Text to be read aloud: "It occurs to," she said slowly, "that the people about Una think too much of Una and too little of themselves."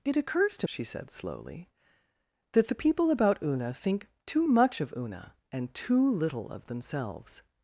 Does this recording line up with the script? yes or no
yes